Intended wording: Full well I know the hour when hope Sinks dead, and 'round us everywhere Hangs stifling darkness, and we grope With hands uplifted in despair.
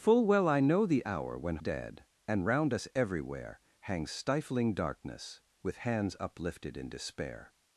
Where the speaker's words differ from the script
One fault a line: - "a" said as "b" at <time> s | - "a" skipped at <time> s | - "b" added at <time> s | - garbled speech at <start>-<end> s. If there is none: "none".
- "hope Sinks" skipped at 1.6 s
- "and we grope" skipped at 5.4 s